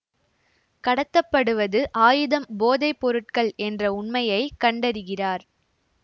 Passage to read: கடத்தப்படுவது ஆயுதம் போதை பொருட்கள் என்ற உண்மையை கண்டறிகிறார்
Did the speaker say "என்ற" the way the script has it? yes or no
yes